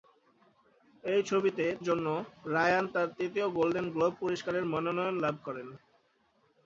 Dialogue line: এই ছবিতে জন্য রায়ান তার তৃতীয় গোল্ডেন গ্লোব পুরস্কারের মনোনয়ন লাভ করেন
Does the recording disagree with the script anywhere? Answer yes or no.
no